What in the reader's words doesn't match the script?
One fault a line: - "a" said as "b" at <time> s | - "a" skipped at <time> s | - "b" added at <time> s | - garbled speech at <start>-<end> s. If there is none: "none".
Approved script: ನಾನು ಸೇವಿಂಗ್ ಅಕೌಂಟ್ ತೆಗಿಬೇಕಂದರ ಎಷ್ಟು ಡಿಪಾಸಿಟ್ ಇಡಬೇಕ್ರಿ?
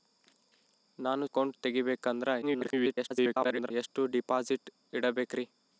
- "ಸೇವಿಂಗ್" skipped at 1.3 s
- garbled speech at 2.4-3.7 s